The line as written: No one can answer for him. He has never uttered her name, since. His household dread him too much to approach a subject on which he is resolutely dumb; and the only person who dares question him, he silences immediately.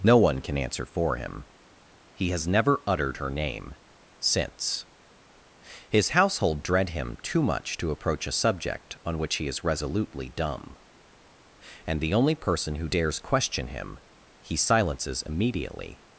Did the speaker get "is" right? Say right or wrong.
right